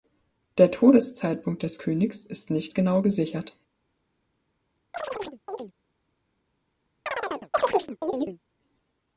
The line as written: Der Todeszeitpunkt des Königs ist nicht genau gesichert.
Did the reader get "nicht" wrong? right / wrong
right